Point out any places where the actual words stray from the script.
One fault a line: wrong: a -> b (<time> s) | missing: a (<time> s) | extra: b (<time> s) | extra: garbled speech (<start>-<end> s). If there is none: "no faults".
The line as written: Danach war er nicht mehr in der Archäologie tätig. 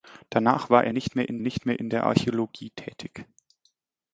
extra: nicht mehr in (1.4 s)